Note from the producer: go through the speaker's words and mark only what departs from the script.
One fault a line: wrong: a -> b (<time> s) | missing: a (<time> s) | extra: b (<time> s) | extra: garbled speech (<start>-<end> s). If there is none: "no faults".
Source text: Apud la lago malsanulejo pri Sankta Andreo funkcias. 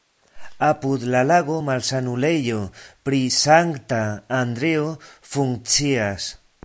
no faults